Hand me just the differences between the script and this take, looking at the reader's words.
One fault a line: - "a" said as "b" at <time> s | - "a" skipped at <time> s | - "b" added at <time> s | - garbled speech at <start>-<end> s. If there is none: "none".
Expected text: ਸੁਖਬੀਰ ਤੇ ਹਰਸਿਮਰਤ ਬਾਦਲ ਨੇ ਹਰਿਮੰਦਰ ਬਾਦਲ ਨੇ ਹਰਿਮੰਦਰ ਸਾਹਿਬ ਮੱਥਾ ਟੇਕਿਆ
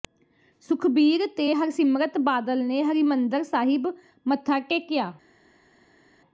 - "ਬਾਦਲ ਨੇ ਹਰਿਮੰਦਰ" skipped at 3.4 s